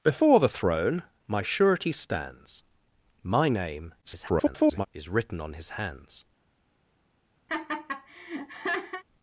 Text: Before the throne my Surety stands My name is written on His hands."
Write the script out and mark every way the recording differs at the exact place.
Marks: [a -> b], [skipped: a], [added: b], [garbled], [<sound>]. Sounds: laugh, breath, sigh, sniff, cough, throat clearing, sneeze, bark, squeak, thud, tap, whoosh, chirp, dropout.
Before the throne my Surety stands My name [garbled] is written on His hands." [laugh]